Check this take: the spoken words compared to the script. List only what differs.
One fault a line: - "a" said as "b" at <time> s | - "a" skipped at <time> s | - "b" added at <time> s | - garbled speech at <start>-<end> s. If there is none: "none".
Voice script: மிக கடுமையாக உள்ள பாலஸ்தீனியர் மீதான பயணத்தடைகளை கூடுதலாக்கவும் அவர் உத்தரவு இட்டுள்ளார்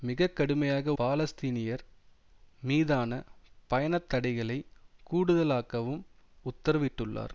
- "உள்ள" skipped at 0.9 s
- "அவர்" skipped at 6.0 s